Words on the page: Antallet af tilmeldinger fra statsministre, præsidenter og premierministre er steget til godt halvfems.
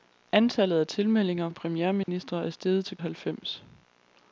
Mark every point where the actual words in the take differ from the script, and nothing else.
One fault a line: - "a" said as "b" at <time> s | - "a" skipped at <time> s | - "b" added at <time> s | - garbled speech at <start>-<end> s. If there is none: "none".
- "fra statsministre præsidenter" skipped at 1.5 s
- "godt" skipped at 3.0 s